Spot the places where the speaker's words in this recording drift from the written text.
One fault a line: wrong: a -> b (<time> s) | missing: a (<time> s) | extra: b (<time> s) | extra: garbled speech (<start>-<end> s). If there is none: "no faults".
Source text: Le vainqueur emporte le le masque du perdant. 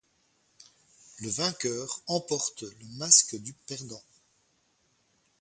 missing: le (2.9 s)